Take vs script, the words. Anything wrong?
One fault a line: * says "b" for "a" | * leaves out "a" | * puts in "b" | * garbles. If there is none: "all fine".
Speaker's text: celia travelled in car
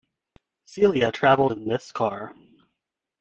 * puts in "this"